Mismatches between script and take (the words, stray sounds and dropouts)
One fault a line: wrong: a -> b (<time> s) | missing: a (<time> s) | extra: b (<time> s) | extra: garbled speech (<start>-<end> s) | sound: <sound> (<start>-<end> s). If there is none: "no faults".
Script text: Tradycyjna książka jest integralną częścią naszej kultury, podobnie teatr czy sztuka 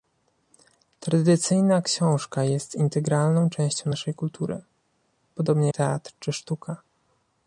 no faults